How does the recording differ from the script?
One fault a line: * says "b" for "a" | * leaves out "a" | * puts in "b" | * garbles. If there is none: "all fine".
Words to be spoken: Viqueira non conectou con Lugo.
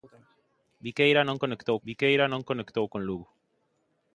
* puts in "viqueira non conectou"